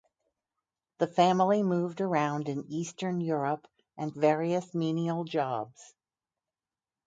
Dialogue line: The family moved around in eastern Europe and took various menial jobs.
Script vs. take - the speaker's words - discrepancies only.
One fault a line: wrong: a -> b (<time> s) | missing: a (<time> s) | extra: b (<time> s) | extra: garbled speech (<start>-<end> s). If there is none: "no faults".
missing: took (4.2 s)